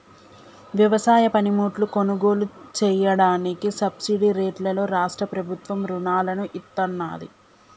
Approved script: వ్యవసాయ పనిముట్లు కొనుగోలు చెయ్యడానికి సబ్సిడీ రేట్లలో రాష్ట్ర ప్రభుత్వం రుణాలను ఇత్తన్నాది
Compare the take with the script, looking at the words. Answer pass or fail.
pass